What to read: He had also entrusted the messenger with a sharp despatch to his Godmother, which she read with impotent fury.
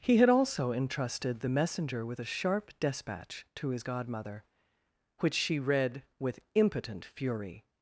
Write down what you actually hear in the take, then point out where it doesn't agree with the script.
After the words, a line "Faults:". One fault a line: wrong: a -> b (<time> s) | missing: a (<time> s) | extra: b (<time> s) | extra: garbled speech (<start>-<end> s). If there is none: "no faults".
He had also entrusted the messenger with a sharp despatch to his Godmother, which she read with impotent fury.
Faults:
no faults